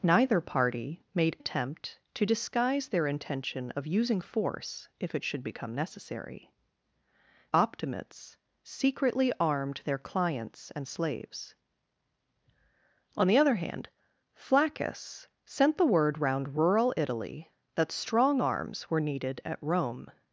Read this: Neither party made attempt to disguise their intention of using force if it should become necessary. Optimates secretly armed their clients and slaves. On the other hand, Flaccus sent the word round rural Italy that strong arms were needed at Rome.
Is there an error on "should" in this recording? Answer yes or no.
no